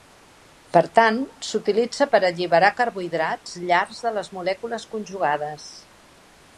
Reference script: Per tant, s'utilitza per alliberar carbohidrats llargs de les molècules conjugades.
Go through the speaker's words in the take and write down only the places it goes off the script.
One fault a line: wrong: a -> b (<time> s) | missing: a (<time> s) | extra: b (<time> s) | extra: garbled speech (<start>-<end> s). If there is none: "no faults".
no faults